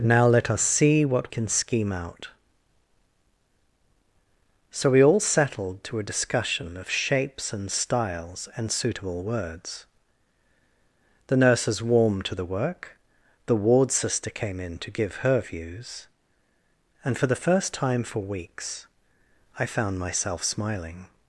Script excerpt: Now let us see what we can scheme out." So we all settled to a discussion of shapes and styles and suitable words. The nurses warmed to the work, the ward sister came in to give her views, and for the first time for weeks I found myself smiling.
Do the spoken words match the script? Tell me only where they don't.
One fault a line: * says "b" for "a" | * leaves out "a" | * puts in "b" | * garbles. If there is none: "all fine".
* leaves out "we"